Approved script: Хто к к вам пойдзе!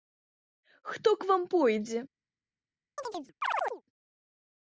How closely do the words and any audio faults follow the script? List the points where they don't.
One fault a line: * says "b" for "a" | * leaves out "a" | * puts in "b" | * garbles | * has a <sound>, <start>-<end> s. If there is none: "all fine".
* leaves out "к"
* has a chirp, 3.0-3.8 s